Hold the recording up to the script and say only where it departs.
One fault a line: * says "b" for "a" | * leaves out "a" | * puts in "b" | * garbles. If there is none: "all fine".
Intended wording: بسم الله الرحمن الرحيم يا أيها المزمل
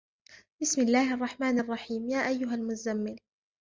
all fine